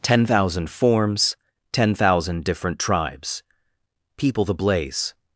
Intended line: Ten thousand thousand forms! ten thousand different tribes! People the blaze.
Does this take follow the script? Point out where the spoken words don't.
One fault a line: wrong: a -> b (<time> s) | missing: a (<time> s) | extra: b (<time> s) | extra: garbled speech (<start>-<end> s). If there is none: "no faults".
missing: thousand (0.7 s)